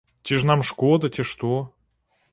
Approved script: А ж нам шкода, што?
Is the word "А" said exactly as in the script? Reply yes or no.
no